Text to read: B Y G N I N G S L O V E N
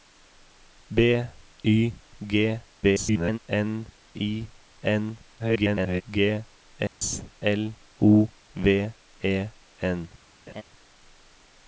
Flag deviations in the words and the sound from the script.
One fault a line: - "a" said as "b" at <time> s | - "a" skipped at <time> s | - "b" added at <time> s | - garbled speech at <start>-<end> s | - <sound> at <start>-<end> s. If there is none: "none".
- garbled speech at 2.8-3.4 s
- garbled speech at 5.4-6.0 s
- dropout at 6.9-7.0 s
- laugh at 10.5-10.6 s